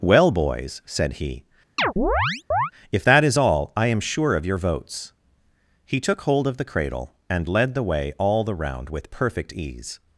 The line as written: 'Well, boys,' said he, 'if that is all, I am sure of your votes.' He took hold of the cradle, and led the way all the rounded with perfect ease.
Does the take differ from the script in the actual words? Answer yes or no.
yes